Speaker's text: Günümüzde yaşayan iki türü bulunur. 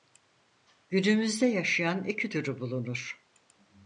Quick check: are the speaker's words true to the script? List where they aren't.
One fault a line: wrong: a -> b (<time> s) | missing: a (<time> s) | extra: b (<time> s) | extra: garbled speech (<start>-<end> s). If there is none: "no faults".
no faults